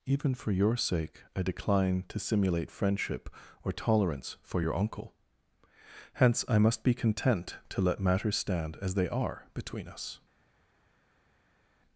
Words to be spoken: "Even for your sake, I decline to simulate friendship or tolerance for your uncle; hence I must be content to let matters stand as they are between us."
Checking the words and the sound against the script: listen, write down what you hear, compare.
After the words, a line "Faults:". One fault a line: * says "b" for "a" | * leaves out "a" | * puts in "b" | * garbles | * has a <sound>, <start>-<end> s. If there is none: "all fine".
"Even for your sake, I decline to simulate friendship or tolerance for your uncle; hence I must be content to let matters stand as they are between us."
Faults:
all fine